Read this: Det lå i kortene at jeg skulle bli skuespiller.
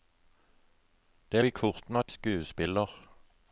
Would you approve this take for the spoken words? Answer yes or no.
no